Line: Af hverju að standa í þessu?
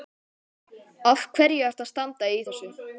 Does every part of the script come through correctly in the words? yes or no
no